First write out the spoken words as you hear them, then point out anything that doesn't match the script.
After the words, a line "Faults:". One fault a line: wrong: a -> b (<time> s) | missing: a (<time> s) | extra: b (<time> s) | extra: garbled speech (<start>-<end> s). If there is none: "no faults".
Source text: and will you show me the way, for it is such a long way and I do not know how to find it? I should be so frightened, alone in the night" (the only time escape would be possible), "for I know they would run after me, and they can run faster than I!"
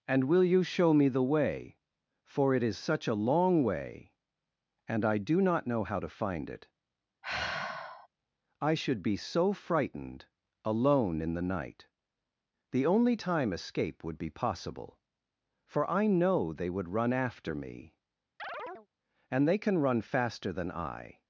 and will you show me the way, for it is such a long way and I do not know how to find it? I should be so frightened, alone in the night" (the only time escape would be possible), "for I know they would run after me, and they can run faster than I!"
Faults:
no faults